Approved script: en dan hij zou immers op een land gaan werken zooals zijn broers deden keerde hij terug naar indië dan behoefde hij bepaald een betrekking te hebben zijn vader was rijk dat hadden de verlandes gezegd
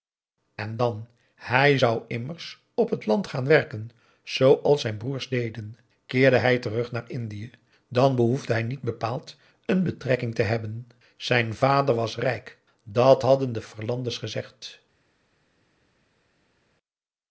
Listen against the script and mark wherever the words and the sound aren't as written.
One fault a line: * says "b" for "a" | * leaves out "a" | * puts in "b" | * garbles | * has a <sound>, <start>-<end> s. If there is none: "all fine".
* says "het" for "een"
* puts in "niet"